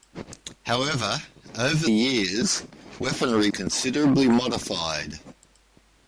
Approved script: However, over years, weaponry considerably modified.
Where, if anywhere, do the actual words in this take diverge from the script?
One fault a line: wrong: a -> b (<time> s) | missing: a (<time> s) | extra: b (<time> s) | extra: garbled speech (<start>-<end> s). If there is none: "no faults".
no faults